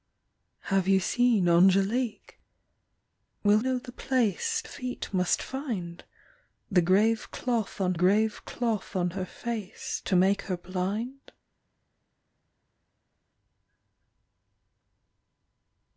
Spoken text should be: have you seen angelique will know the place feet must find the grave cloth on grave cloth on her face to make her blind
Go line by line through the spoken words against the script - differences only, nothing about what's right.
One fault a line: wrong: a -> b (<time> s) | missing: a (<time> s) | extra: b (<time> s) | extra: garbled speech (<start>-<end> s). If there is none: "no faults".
no faults